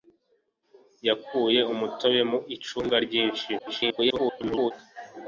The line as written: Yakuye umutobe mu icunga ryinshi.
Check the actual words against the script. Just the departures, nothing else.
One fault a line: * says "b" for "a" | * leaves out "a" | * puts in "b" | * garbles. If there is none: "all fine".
* garbles